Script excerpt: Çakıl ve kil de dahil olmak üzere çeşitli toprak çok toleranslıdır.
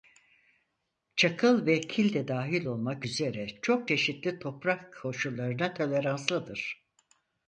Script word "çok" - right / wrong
wrong